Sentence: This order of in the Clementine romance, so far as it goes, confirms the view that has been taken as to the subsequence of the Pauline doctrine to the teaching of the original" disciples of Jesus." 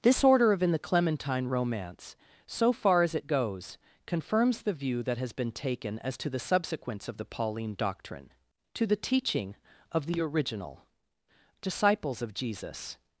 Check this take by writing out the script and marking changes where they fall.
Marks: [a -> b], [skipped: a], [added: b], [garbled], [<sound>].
This order of in the Clementine romance, so far as it goes, confirms the view that has been taken as to the subsequence of the Pauline doctrine to the teaching of the original" disciples of Jesus."